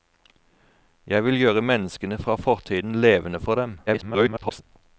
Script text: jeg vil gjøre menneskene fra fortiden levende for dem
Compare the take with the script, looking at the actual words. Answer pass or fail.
fail